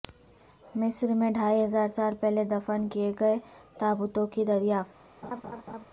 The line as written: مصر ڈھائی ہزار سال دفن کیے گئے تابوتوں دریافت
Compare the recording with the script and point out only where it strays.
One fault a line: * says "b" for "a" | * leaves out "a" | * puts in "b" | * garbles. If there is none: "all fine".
* puts in "میں"
* puts in "پہلے"
* puts in "کی"